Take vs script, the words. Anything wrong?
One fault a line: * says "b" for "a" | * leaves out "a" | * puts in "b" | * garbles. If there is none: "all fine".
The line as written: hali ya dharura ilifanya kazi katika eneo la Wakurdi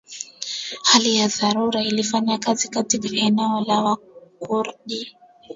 all fine